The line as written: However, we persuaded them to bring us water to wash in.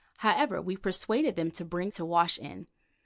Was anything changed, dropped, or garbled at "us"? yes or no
yes